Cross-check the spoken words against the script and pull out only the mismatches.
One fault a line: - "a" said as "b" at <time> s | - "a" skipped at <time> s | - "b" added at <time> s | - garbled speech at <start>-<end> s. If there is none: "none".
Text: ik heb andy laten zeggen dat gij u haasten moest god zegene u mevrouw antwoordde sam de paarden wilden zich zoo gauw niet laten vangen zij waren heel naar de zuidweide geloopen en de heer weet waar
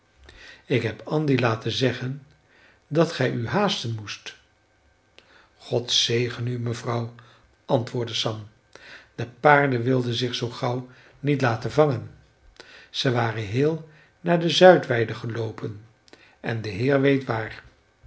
none